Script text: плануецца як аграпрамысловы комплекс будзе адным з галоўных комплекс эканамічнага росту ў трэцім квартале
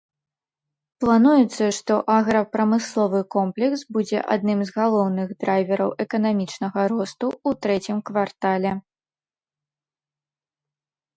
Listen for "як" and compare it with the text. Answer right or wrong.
wrong